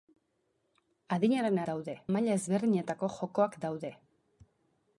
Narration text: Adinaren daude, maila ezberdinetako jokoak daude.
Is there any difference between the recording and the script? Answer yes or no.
no